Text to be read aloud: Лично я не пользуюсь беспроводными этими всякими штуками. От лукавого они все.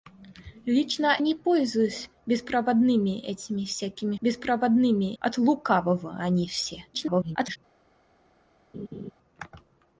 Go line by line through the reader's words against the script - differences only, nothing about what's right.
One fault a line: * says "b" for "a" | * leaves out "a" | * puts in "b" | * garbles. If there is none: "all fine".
* leaves out "я"
* says "беспроводными" for "штуками"
* garbles